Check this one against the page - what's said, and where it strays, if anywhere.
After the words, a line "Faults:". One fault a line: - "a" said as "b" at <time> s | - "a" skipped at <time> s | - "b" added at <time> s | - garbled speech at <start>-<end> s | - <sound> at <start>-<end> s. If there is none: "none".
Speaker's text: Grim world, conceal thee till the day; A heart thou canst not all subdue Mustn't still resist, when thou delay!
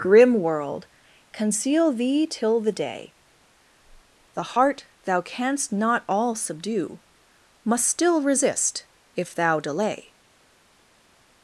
Grim world, conceal thee till the day; The heart thou canst not all subdue Must still resist, if thou delay!
Faults:
- "A" said as "The" at 4.3 s
- "Mustn't" said as "Must" at 7.6 s
- "when" said as "if" at 9.1 s